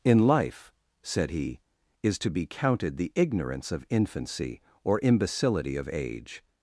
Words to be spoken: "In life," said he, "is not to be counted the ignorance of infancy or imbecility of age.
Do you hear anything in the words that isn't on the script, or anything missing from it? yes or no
yes